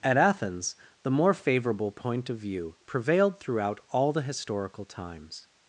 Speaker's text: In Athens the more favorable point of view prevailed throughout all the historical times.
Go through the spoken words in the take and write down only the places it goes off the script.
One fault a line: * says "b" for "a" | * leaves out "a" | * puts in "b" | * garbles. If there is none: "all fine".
* says "At" for "In"